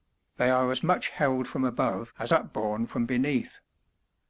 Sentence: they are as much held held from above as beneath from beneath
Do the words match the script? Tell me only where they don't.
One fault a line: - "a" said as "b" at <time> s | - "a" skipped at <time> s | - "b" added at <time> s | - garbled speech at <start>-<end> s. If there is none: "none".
- "held" skipped at 1.5 s
- "beneath" said as "upborne" at 2.3 s